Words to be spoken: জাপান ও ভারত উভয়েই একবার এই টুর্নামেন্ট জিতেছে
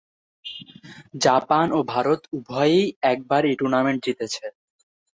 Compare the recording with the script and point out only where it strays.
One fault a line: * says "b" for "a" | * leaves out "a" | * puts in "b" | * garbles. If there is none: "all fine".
all fine